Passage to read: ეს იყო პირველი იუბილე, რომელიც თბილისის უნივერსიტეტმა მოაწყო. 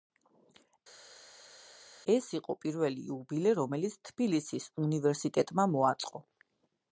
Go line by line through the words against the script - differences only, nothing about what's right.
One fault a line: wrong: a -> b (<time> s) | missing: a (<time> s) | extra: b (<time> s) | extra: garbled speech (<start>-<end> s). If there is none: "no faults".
no faults